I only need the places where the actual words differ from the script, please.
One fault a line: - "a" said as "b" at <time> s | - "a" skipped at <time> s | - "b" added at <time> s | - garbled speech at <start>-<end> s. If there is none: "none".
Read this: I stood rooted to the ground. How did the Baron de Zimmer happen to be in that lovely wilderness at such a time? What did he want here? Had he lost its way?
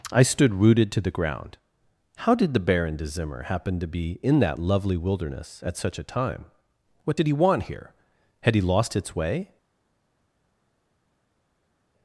none